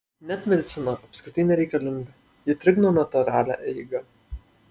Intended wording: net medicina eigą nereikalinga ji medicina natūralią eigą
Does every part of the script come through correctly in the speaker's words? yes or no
no